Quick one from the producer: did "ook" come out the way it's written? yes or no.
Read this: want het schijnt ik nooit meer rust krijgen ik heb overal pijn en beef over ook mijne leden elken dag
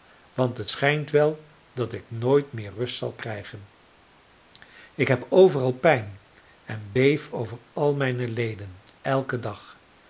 no